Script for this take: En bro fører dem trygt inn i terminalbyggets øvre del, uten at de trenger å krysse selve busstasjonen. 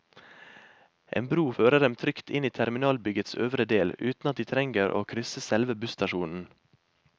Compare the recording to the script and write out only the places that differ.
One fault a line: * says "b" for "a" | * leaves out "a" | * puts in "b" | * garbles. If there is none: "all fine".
all fine